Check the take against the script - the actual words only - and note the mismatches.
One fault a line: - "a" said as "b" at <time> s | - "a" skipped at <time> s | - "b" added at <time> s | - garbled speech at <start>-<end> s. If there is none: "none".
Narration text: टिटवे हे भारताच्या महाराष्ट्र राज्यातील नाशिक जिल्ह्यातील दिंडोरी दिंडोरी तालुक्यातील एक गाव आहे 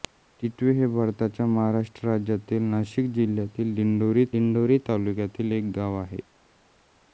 none